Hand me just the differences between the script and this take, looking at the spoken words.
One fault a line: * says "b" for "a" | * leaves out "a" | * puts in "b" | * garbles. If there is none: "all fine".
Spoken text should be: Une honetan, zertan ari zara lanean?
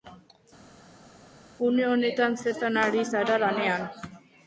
all fine